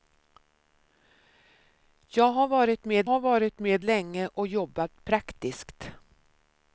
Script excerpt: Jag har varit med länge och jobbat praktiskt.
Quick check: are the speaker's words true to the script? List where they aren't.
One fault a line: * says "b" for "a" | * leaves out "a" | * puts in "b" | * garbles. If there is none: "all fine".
* puts in "har varit med"